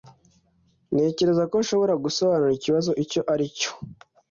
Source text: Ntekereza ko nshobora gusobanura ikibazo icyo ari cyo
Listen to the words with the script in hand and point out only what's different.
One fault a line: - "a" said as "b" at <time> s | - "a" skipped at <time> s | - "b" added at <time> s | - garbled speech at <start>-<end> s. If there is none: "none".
none